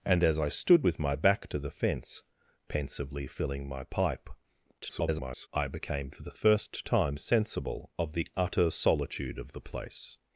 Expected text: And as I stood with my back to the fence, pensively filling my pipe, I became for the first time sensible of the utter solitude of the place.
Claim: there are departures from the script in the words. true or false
true